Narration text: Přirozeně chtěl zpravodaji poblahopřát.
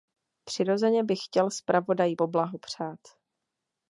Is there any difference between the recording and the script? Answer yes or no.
yes